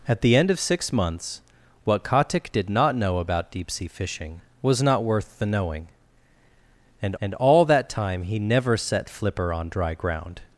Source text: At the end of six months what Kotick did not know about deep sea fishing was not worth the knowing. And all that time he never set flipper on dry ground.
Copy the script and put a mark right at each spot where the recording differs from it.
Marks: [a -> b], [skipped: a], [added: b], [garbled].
At the end of six months what Kotick did not know about deep sea fishing was not worth the knowing. And [added: and] all that time he never set flipper on dry ground.